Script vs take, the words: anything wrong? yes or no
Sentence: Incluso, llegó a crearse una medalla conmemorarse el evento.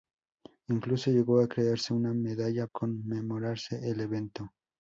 no